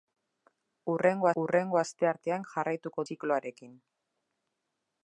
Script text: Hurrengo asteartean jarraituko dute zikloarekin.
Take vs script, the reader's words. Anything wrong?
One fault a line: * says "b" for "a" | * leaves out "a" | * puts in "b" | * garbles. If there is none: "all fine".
* puts in "hurrengo"
* leaves out "dute"